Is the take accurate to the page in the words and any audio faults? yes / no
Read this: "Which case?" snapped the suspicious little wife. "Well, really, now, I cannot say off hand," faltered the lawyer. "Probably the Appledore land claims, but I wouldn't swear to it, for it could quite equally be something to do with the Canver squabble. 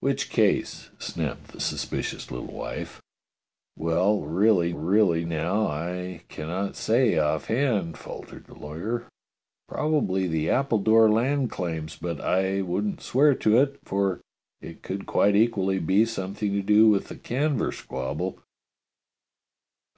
no